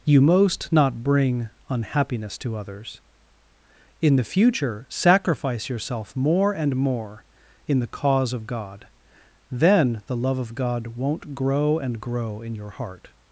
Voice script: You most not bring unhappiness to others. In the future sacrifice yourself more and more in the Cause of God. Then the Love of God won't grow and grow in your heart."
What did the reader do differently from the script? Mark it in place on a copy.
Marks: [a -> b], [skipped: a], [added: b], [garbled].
You most not bring unhappiness to others. In the future sacrifice yourself more and more in the Cause of God. Then the Love of God won't grow and grow in your heart."